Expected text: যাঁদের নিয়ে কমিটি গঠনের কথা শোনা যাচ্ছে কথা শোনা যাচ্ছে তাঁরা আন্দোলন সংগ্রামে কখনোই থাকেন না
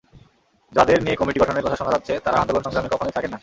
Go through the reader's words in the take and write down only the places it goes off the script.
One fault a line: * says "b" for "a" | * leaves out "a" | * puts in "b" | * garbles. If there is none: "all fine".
* leaves out "কথা শোনা যাচ্ছে"